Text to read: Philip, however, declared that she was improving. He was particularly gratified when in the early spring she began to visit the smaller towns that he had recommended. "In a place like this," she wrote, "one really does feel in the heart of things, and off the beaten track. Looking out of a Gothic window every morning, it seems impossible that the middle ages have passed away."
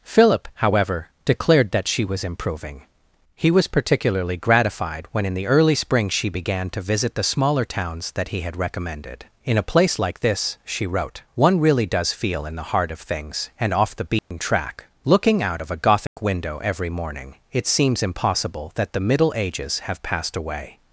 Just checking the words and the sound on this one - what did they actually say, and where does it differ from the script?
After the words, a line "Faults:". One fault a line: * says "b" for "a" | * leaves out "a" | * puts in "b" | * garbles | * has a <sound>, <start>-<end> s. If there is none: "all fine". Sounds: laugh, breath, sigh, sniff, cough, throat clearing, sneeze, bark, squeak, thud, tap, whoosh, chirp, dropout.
Philip, however, declared that she was improving. He was particularly gratified when in the early spring she began to visit the smaller towns that he had recommended. "In a place like this," she wrote, "one really does feel in the heart of things, and off the beaten track. Looking out of a Gothic window every morning, it seems impossible that the middle ages have passed away."
Faults:
* has a dropout, 14.2-14.3 s
* has a dropout, 16.1-16.2 s